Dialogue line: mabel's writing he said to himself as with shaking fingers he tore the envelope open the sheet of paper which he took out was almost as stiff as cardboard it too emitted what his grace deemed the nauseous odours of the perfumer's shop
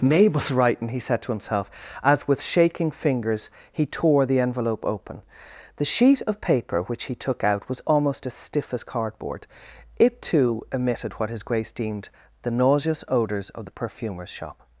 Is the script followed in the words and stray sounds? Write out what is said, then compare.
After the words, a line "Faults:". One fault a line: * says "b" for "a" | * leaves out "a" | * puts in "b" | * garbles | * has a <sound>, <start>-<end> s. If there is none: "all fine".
mabel's writing he said to himself as with shaking fingers he tore the envelope open the sheet of paper which he took out was almost as stiff as cardboard it too emitted what his grace deemed the nauseous odours of the perfumer's shop
Faults:
all fine